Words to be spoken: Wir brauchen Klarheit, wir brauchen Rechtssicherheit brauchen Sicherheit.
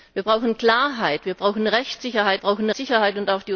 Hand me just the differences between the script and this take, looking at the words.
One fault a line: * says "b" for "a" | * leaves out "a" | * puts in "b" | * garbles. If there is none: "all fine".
all fine